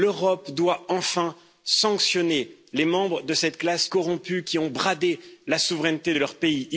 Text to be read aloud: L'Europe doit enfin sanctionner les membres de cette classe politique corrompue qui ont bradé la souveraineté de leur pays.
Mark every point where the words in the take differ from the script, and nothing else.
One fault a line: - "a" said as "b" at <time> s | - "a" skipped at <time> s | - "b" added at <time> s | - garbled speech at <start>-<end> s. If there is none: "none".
- "politique" skipped at 3.9 s